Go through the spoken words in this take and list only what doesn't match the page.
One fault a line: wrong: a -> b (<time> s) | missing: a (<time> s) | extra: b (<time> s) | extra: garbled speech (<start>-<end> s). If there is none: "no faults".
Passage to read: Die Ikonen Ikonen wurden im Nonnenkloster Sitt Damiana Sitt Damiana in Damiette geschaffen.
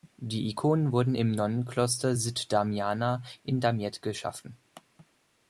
missing: Ikonen (0.9 s)
missing: Sitt Damiana (3.2 s)